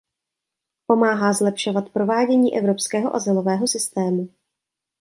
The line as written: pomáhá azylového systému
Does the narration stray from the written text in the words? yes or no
yes